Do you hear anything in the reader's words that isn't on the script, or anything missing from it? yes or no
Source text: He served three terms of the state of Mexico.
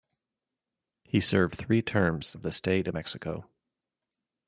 no